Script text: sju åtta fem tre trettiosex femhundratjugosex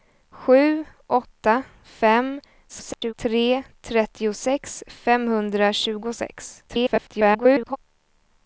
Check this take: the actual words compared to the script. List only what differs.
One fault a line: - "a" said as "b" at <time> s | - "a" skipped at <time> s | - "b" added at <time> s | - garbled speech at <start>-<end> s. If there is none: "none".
- garbled speech at 2.7-3.1 s
- garbled speech at 6.7-7.8 s